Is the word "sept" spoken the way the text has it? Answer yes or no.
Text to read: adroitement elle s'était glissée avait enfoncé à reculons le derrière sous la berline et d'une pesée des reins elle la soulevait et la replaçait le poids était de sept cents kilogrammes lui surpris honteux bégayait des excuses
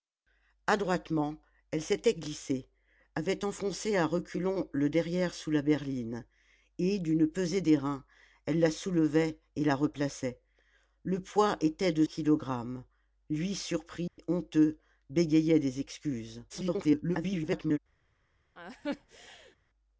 no